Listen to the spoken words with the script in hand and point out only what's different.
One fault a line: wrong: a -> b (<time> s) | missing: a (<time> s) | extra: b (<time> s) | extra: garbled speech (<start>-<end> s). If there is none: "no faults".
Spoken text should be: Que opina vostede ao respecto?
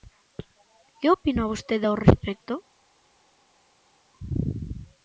no faults